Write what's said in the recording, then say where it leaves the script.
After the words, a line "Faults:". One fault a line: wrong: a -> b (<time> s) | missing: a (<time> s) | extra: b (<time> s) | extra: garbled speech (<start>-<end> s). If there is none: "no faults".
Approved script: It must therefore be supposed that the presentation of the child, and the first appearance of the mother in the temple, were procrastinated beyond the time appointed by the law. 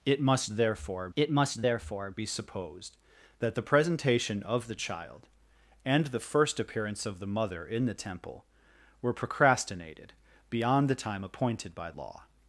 It must therefore it must therefore be supposed that the presentation of the child, and the first appearance of the mother in the temple, were procrastinated beyond the time appointed by law.
Faults:
extra: it must therefore (1.2 s)
missing: the (11.9 s)